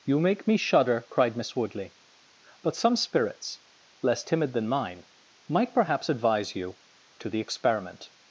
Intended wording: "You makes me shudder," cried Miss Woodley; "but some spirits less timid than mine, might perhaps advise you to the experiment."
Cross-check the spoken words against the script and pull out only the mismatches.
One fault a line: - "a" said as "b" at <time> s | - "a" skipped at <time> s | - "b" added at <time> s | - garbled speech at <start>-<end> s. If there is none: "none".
- "makes" said as "make" at 0.2 s